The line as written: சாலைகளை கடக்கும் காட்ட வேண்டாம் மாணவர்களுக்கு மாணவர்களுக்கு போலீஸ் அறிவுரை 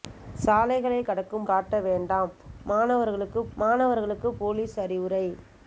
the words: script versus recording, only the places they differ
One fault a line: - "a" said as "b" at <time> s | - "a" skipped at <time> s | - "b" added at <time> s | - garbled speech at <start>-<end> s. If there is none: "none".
none